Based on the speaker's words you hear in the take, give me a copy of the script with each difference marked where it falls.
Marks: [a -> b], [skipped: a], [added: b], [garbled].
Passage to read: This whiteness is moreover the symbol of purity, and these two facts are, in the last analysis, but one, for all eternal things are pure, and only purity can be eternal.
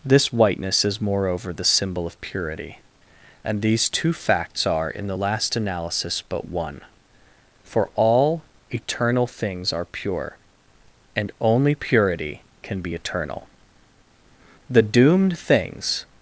This whiteness is moreover the symbol of purity, and these two facts are, in the last analysis, but one, for all eternal things are pure, and only purity can be eternal. [added: The doomed things]